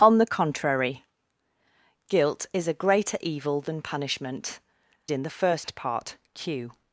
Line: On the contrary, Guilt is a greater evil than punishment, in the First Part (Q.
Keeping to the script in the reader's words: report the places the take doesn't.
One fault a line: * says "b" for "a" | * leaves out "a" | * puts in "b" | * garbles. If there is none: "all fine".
all fine